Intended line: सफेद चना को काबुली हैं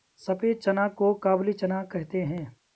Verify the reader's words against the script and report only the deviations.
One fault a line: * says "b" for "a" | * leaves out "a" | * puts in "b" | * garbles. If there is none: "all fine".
* puts in "चना कहते"